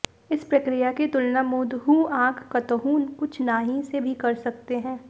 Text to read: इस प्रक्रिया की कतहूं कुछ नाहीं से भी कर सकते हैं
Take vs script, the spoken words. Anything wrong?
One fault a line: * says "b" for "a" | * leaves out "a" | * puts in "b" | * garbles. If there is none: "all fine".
* puts in "तुलना मूंदहूं आंख"